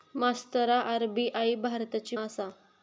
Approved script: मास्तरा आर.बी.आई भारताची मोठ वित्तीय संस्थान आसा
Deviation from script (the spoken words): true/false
true